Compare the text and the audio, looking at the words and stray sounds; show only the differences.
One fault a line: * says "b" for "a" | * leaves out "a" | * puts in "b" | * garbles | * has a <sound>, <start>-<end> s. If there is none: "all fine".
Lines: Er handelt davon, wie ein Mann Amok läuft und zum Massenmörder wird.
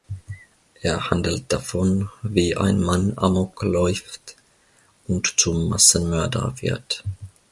all fine